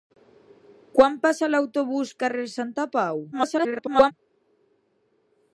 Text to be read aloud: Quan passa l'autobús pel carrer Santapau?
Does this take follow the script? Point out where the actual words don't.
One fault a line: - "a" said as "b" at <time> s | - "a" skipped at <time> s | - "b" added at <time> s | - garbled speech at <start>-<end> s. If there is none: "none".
- "pel" skipped at 2.1 s
- garbled speech at 3.3-4.1 s